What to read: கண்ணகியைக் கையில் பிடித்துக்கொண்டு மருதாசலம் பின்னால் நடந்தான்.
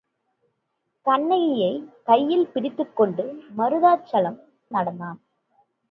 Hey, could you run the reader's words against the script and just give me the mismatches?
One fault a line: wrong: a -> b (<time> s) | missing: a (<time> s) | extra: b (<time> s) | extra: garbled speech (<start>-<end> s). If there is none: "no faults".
missing: பின்னால் (4.4 s)